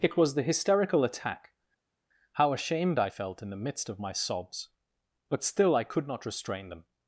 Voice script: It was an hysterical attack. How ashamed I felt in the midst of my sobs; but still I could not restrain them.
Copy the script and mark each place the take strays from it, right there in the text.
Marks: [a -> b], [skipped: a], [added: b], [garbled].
It was [an -> the] hysterical attack. How ashamed I felt in the midst of my sobs; but still I could not restrain them.